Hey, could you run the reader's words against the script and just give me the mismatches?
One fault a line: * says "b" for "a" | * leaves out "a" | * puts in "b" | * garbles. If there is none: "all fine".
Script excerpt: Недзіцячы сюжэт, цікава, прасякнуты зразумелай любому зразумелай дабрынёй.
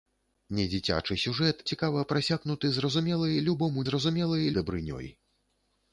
all fine